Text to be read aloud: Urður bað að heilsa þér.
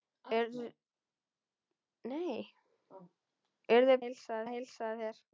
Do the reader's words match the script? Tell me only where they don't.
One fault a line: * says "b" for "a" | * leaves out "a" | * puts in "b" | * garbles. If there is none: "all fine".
* says "heilsa" for "bað"